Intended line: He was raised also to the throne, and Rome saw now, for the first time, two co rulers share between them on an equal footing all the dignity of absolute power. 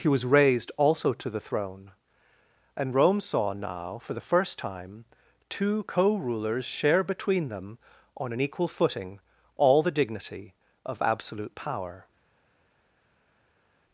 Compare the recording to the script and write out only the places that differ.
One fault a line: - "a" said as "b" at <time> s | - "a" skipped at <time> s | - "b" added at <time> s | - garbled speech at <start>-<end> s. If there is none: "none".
none